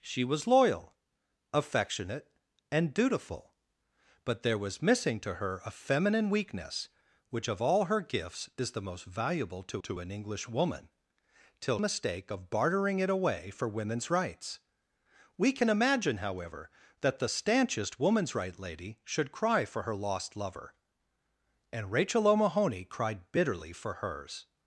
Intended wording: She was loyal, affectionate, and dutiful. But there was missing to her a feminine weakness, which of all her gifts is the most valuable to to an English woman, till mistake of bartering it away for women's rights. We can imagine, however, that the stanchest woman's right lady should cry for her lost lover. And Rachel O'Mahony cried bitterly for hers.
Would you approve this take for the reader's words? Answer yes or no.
yes